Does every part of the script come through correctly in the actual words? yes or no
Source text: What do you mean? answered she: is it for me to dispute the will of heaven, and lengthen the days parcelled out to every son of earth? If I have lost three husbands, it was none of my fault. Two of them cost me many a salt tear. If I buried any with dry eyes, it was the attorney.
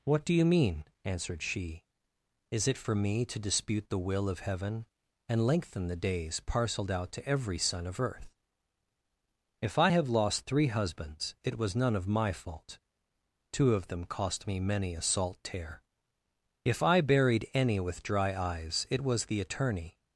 yes